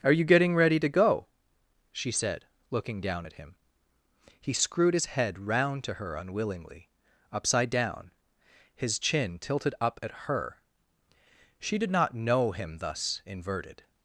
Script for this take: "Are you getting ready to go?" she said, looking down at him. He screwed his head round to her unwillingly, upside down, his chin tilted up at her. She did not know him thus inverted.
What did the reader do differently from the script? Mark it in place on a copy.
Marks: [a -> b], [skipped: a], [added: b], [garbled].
"Are you getting ready to go?" she said, looking down at him. He screwed his head round to her unwillingly, upside down, his chin tilted up at her. She did not know him thus inverted.